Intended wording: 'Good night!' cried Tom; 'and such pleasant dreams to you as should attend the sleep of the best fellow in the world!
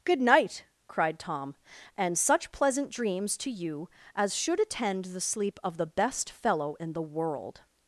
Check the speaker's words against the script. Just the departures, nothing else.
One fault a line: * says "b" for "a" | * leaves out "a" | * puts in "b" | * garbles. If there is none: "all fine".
all fine